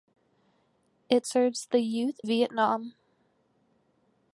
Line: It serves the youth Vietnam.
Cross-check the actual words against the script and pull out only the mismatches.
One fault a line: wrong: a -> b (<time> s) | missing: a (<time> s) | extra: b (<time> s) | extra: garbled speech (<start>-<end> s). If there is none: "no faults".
no faults